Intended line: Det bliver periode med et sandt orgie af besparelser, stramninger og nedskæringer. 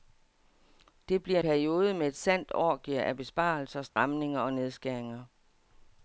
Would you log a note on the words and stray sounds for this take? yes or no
yes